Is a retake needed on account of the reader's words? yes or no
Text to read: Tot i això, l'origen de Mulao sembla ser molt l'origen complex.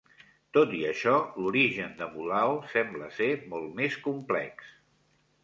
yes